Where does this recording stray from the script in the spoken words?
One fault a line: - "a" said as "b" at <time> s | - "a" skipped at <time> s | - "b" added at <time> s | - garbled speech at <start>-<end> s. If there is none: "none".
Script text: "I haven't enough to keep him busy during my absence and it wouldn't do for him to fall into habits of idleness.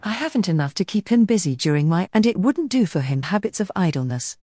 - "absence" skipped at 2.1 s
- "to fall into" skipped at 3.2 s